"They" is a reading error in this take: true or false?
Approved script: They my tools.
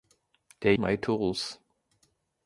false